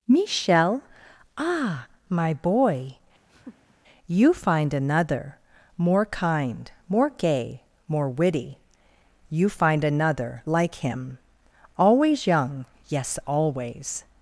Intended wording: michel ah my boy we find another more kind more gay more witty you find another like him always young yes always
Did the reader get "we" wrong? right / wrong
wrong